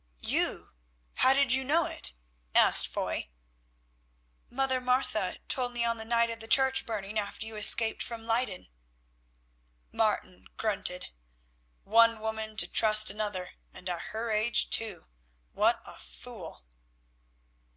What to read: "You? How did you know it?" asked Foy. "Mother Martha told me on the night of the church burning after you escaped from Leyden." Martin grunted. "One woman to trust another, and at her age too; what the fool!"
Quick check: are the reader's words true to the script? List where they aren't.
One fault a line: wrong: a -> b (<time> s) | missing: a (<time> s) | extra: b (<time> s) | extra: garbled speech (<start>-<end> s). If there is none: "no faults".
wrong: the -> a (15.8 s)